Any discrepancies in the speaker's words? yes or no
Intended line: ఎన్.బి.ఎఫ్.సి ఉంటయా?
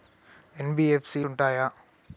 no